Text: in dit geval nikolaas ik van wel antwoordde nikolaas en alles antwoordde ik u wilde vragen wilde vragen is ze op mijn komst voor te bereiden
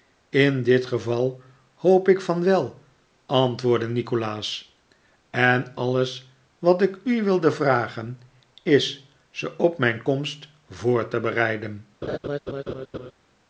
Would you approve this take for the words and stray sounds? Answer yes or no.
no